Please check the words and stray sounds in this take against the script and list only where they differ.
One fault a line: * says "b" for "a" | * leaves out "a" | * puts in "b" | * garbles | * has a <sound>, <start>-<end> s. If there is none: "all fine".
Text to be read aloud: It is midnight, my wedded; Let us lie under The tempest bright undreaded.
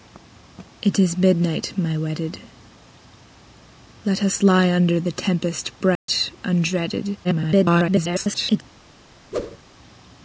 * has a dropout, 6.0-6.1 s
* garbles
* has a whoosh, 9.3-9.6 s